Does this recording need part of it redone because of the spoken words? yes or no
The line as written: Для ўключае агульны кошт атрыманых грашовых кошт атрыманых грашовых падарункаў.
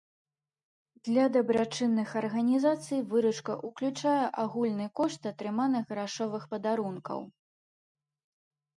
yes